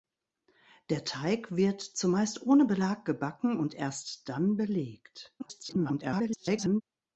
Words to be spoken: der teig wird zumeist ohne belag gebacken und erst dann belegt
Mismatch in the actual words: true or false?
true